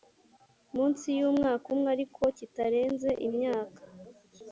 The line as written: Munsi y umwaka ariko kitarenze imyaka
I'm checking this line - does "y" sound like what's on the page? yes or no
yes